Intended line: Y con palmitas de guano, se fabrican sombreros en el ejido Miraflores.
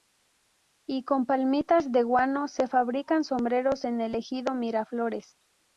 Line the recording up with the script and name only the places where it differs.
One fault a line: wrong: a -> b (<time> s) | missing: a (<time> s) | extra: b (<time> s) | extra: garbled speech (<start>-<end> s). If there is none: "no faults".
no faults